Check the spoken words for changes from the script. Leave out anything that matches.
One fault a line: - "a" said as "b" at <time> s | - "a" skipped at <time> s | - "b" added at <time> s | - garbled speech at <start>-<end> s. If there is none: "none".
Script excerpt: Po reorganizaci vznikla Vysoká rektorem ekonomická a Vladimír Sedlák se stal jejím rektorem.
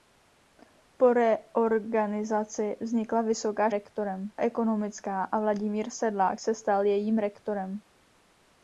none